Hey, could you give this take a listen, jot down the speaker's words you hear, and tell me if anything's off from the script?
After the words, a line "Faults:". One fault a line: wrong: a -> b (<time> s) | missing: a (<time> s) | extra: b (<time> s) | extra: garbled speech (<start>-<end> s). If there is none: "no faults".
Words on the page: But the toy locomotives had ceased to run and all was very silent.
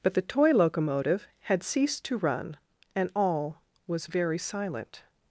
But the toy locomotive had ceased to run and all was very silent.
Faults:
wrong: locomotives -> locomotive (0.5 s)